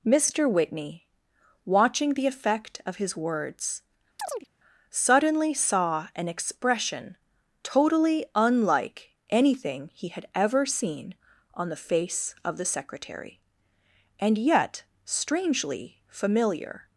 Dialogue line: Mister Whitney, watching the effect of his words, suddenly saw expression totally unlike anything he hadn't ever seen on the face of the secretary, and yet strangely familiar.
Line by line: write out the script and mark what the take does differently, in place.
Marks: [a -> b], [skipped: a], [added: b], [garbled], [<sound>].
Mister Whitney, watching the effect of his words, [chirp] suddenly saw [added: an] expression totally unlike anything he [hadn't -> had] ever seen on the face of the secretary, and yet strangely familiar.